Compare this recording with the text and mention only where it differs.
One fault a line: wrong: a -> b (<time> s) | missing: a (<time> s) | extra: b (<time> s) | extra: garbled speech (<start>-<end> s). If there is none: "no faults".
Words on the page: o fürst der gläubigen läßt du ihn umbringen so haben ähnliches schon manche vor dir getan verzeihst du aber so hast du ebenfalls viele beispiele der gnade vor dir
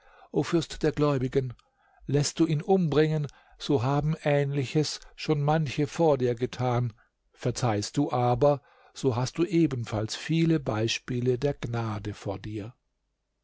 no faults